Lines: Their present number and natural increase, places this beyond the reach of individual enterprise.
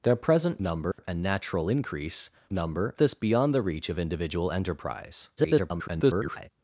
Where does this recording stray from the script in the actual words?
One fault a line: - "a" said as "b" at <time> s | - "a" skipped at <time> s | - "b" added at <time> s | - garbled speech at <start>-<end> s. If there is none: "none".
- "places" said as "number" at 2.5 s
- garbled speech at 5.4-6.5 s